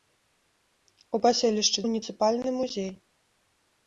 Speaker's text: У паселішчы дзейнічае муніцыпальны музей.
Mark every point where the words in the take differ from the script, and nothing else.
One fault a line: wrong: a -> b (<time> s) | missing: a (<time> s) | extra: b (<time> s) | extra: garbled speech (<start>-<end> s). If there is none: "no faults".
missing: дзейнічае (1.8 s)